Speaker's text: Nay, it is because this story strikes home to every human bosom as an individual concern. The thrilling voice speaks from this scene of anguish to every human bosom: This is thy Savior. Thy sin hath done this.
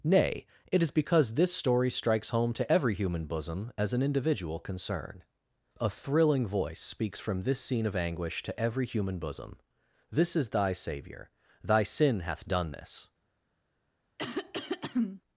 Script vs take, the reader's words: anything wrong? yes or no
yes